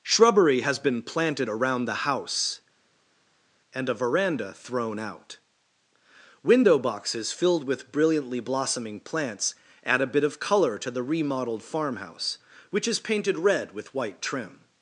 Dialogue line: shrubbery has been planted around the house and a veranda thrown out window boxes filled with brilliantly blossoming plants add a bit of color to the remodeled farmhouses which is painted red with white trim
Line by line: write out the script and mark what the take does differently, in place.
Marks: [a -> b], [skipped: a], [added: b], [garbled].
shrubbery has been planted around the house and a veranda thrown out window boxes filled with brilliantly blossoming plants add a bit of color to the remodeled [farmhouses -> farmhouse] which is painted red with white trim